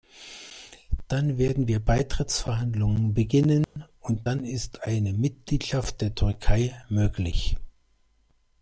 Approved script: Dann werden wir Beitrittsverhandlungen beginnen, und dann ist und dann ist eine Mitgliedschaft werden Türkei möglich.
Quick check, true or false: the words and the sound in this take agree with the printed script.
false